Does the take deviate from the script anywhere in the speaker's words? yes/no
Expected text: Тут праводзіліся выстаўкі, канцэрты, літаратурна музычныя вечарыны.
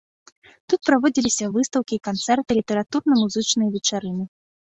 no